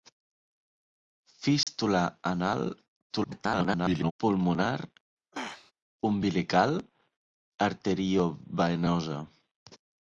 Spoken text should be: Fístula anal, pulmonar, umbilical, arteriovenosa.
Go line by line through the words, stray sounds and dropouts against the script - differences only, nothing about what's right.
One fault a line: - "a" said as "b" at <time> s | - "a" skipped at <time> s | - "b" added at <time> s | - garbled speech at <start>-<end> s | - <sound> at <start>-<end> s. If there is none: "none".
- dropout at 1.6-1.7 s
- garbled speech at 3.1-4.1 s
- throat clearing at 5.3-5.7 s